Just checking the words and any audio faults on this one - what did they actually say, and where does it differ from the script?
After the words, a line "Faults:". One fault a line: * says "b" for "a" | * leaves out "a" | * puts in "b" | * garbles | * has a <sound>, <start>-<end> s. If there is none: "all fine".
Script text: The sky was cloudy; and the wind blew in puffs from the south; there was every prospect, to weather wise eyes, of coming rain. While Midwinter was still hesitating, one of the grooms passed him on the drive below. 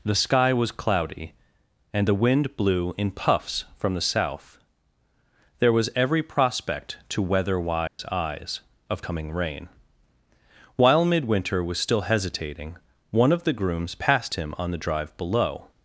The sky was cloudy; and the wind blew in puffs from the south; there was every prospect, to weather wise eyes, of coming rain. While Midwinter was still hesitating, one of the grooms passed him on the drive below.
Faults:
* has a dropout, 7.9-8.0 s